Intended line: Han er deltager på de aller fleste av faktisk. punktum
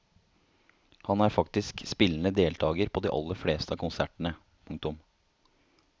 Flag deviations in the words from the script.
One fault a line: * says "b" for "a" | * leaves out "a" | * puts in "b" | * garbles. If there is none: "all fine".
* puts in "faktisk spillende"
* says "konsertene" for "faktisk"